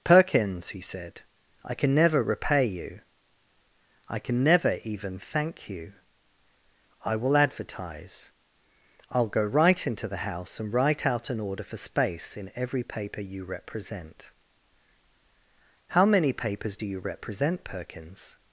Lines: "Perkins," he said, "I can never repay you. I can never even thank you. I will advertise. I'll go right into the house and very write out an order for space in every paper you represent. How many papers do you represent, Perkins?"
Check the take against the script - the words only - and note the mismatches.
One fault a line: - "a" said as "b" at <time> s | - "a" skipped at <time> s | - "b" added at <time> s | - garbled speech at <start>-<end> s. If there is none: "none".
- "very" skipped at 10.7 s